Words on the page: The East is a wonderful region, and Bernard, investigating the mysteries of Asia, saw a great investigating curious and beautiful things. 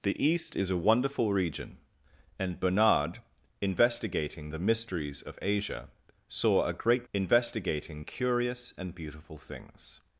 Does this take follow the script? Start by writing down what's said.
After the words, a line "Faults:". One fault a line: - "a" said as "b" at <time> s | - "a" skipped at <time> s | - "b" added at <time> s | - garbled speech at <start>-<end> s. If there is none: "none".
The East is a wonderful region, and Bernard, investigating the mysteries of Asia, saw a great investigating curious and beautiful things.
Faults:
none